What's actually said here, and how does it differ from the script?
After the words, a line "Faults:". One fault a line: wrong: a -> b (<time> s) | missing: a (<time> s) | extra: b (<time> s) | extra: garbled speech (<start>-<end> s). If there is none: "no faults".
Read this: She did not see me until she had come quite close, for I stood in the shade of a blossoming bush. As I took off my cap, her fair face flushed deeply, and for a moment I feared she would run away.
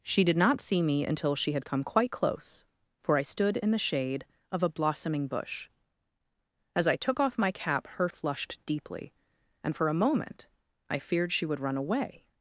She did not see me until she had come quite close, for I stood in the shade of a blossoming bush. As I took off my cap, her flushed deeply, and for a moment I feared she would run away.
Faults:
missing: fair face (8.1 s)